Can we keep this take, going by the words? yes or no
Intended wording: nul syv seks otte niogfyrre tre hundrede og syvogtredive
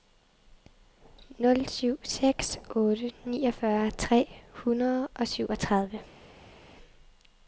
yes